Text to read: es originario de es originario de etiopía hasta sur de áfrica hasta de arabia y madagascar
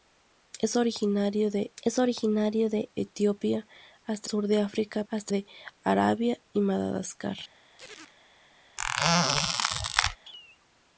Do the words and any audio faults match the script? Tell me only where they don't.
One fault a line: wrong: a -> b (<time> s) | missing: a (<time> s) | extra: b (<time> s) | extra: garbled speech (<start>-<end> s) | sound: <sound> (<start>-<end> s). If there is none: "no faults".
sound: chirp (7.8-8.2 s)
sound: squeak (8.8-10.2 s)